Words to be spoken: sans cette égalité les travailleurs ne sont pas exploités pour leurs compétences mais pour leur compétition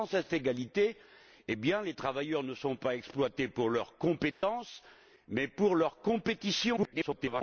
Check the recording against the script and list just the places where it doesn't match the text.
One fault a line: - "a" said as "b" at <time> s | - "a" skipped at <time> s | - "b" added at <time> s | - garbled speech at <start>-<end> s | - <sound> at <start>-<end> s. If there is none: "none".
- dropout at 4.3-4.4 s
- garbled speech at 6.8-7.4 s